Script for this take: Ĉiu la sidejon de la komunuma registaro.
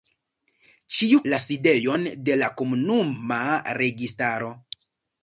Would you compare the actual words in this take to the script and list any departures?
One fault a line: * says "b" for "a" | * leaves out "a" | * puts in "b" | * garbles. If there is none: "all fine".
all fine